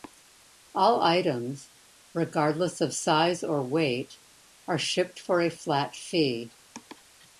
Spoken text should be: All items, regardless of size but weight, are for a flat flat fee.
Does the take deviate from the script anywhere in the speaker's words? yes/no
yes